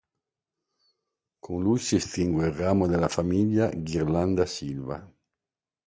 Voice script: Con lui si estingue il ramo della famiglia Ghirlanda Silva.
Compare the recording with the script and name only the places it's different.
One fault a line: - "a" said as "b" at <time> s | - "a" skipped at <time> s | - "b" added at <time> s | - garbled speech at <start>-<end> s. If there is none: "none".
none